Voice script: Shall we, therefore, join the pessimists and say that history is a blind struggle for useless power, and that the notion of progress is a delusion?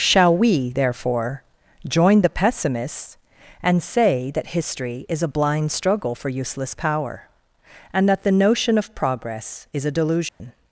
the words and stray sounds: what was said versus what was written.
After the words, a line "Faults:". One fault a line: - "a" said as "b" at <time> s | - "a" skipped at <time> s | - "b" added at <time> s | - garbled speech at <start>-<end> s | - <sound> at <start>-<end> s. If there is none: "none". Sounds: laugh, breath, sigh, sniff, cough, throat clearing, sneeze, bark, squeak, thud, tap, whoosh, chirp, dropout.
Shall we, therefore, join the pessimists and say that history is a blind struggle for useless power, and that the notion of progress is a delusion?
Faults:
- dropout at 10.3-10.4 s